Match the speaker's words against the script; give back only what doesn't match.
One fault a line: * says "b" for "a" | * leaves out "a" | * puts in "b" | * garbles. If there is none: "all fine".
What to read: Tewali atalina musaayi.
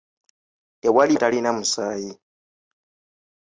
all fine